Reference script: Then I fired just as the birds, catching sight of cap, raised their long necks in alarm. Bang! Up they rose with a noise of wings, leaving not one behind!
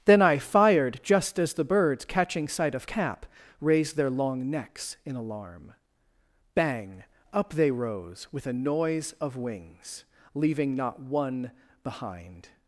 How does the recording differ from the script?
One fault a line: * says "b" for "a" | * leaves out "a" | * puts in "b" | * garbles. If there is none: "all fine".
all fine